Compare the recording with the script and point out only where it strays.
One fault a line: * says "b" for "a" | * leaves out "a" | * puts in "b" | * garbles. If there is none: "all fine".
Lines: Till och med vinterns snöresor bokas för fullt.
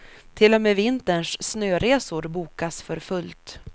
all fine